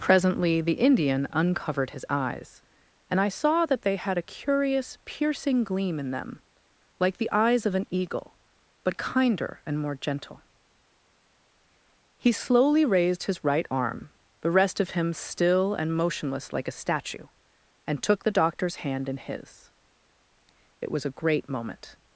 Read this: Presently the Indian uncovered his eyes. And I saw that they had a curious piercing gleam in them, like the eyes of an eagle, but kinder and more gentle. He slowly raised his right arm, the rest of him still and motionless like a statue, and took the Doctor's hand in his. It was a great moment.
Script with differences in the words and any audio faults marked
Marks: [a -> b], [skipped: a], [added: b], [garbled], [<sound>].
Presently the Indian uncovered his eyes. And I saw that they had a curious piercing gleam in them, like the eyes of an eagle, but kinder and more gentle. He slowly raised his right arm, the rest of him still and motionless like a statue, and took the Doctor's hand in his. It was a great moment.